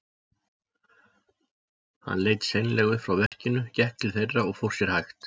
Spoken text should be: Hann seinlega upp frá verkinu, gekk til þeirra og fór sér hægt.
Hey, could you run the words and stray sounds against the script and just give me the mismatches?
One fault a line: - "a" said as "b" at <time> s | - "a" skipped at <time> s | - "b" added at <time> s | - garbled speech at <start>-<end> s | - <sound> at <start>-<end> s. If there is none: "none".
- "leit" added at 2.3 s
- dropout at 3.3-3.3 s